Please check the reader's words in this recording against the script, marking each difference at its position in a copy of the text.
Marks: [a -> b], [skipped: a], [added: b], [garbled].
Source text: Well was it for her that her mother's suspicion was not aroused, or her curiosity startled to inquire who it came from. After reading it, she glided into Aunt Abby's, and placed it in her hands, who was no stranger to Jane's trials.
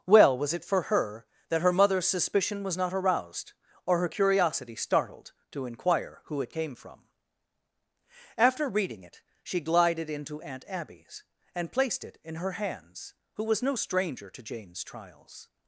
Well was it for her that her mother's suspicion was not aroused, or her curiosity startled to inquire who it came from. After reading it, she glided into Aunt Abby's, and placed it in her hands, who was no stranger to Jane's trials.